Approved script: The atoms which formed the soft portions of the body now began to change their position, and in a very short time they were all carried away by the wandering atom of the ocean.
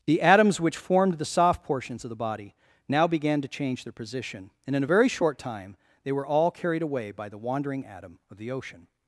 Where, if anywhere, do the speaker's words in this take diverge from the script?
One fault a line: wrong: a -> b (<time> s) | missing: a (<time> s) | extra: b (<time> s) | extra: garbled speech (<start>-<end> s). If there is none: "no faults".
no faults